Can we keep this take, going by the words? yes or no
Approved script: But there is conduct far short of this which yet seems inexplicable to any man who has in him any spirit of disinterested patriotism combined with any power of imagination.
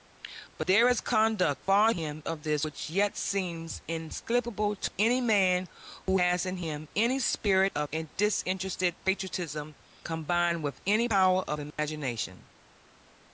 no